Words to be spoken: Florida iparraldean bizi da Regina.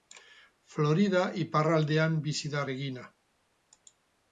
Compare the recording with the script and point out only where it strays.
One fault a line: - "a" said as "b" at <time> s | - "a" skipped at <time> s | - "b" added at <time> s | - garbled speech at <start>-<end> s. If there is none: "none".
none